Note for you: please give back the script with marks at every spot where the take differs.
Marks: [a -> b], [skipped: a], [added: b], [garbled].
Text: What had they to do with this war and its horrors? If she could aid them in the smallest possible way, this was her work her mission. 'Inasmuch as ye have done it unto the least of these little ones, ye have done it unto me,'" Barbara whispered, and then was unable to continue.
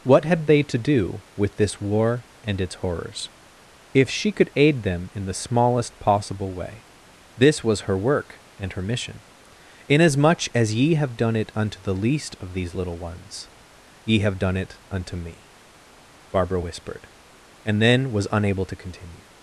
What had they to do with this war and its horrors? If she could aid them in the smallest possible way, this was her work [added: and] her mission. 'Inasmuch as ye have done it unto the least of these little ones, ye have done it unto me,'" Barbara whispered, and then was unable to continue.